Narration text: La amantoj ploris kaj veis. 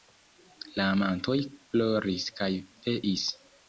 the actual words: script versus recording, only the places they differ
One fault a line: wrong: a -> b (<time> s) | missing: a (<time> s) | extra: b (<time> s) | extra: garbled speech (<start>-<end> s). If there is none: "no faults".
no faults